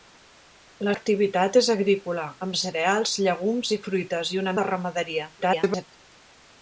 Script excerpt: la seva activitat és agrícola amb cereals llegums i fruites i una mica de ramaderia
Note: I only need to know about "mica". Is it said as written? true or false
false